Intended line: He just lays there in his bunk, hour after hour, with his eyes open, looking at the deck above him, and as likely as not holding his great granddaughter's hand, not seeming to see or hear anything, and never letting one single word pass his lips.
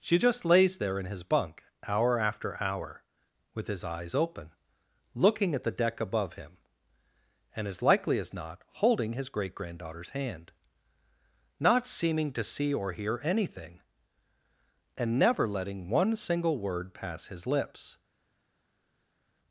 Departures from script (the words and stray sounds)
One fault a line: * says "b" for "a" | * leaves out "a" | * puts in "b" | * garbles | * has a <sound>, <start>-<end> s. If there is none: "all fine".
* says "She" for "He"